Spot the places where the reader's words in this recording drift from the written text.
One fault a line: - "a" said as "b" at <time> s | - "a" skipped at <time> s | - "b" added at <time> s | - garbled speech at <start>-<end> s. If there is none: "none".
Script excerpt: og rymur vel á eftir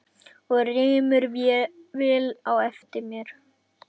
none